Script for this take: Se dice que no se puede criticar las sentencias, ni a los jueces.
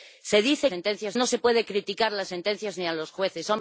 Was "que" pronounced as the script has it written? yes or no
no